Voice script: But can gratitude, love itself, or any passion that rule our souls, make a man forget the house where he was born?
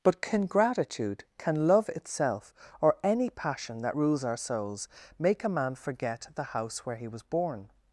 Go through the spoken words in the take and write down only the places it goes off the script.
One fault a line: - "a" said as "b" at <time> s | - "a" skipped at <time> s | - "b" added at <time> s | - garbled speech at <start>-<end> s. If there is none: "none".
- "can" added at 1.4 s
- "rule" said as "rules" at 3.9 s